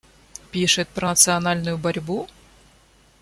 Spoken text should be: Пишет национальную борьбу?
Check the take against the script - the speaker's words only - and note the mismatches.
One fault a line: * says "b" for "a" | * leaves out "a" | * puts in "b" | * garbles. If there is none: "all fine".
* puts in "про"